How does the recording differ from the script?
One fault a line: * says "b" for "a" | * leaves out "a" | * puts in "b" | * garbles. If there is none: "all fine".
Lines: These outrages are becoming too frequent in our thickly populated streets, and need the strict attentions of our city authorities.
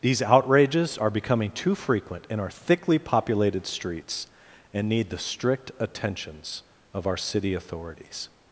all fine